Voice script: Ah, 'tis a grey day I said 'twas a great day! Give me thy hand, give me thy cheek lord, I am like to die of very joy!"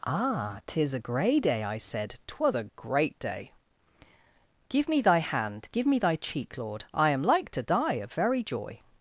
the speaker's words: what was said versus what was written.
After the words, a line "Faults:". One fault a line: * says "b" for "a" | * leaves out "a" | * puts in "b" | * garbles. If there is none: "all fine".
Ah, 'tis a grey day I said 'twas a great day! Give me thy hand, give me thy cheek lord, I am like to die of very joy!"
Faults:
all fine